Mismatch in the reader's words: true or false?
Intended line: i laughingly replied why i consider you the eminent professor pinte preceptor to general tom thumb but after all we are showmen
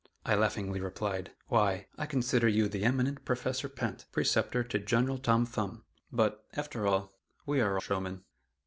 false